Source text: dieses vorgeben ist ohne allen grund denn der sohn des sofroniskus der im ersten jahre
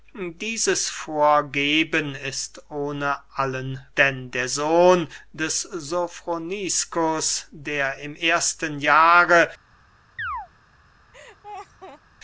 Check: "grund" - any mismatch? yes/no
yes